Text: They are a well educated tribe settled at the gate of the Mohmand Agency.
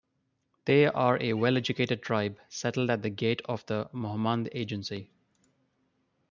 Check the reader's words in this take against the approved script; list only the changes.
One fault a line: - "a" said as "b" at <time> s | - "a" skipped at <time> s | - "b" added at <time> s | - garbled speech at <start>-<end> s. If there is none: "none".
none